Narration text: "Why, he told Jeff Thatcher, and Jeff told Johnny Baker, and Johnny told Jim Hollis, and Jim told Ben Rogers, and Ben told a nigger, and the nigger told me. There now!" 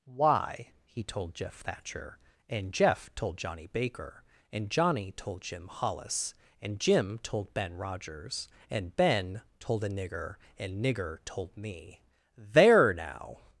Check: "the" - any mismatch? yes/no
yes